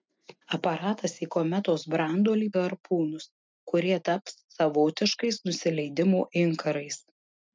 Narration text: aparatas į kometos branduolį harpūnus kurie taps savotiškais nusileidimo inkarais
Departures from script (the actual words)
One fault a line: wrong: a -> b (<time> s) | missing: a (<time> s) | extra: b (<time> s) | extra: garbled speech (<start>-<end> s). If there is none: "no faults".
no faults